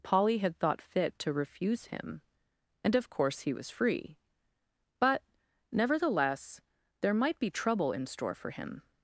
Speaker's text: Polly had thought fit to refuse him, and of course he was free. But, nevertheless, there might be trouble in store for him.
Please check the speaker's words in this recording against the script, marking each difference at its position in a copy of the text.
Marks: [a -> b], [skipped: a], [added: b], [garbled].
Polly had thought fit to refuse him, and of course he was free. But, nevertheless, there might be trouble in store for him.